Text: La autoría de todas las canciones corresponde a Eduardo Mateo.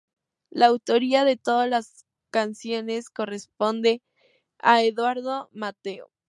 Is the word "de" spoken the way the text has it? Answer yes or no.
yes